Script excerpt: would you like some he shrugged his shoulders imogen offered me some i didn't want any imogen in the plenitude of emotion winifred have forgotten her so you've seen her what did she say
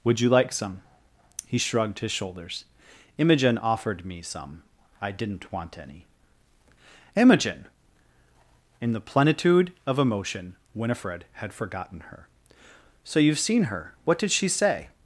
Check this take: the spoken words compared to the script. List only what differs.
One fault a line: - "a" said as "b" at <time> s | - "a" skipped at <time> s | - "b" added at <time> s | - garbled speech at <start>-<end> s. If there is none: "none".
- "have" said as "had" at 11.3 s